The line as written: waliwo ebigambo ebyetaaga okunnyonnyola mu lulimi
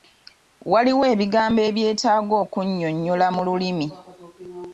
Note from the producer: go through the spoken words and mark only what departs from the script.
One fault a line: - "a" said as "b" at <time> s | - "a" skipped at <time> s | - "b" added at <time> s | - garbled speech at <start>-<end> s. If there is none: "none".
none